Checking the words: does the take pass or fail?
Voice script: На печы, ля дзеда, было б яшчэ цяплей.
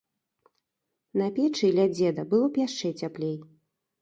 pass